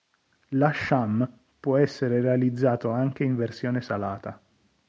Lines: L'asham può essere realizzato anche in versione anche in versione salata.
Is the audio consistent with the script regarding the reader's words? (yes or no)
no